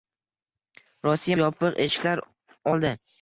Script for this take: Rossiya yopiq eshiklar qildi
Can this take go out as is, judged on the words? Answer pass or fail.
pass